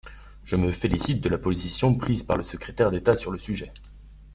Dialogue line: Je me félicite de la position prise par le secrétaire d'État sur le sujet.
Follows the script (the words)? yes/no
yes